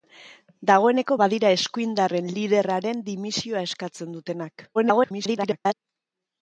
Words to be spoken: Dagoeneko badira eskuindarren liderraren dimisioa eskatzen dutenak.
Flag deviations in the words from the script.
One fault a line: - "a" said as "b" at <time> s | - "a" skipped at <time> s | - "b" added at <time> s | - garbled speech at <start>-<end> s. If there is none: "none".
- garbled speech at 4.7-5.7 s